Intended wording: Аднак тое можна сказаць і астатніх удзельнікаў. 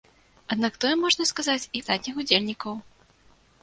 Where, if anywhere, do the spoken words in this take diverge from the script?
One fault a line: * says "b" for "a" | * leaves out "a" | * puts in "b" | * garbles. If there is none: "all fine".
all fine